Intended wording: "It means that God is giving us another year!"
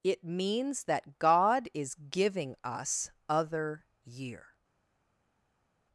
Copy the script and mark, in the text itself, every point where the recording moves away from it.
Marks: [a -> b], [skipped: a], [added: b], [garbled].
"It means that God is giving us [another -> other] year!"